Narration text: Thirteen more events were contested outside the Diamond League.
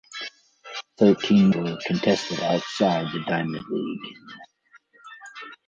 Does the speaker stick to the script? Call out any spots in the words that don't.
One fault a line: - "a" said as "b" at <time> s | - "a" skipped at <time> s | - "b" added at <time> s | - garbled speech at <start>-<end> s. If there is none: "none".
- "more events" skipped at 1.5 s